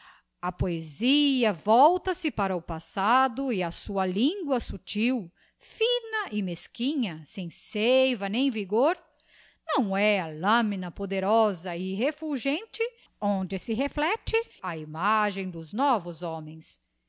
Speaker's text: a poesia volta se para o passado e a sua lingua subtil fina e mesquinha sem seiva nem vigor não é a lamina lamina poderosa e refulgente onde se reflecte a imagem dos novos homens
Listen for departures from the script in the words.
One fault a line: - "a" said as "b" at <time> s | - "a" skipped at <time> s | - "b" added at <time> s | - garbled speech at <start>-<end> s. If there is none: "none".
- "lamina" skipped at 10.9 s